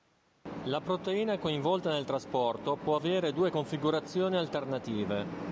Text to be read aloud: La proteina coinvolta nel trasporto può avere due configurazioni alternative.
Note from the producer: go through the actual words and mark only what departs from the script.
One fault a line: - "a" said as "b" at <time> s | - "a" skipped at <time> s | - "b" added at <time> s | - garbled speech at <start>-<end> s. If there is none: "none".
none